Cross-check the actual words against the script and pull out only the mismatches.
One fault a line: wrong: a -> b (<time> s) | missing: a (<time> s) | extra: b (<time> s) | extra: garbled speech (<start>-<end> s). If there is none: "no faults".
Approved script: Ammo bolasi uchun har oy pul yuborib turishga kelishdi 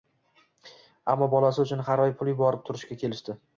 no faults